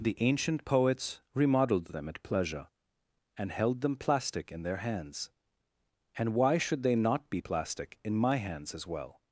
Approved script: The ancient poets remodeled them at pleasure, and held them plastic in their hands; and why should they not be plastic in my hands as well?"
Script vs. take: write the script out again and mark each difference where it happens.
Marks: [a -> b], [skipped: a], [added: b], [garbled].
The ancient poets remodeled them at pleasure, and held them plastic in their hands; and why should they not be plastic in my hands as well?"